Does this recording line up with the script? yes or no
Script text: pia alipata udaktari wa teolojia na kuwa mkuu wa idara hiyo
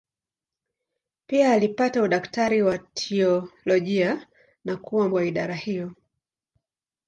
no